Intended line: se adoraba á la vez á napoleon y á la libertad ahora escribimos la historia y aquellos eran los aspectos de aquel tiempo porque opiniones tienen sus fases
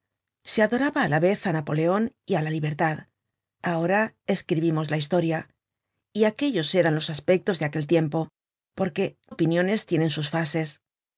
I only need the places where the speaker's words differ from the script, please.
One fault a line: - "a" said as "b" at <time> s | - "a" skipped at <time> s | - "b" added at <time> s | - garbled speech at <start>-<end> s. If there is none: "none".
none